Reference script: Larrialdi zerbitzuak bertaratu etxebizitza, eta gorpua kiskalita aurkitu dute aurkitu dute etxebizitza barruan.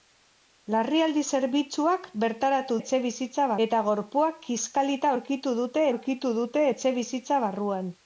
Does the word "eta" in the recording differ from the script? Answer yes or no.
no